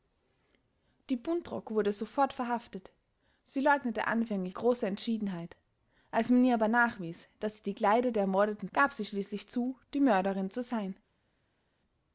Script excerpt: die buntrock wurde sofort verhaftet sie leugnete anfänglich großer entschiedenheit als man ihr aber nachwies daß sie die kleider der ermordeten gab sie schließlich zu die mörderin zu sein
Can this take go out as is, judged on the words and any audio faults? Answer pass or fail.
pass